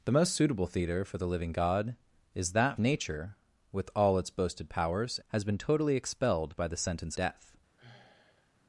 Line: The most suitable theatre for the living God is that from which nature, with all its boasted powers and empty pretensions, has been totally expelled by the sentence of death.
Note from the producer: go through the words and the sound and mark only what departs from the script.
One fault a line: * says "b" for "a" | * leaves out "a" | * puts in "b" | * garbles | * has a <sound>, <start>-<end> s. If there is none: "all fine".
* leaves out "from which"
* leaves out "and empty pretensions"
* leaves out "of"
* has a sigh, 7.8-8.5 s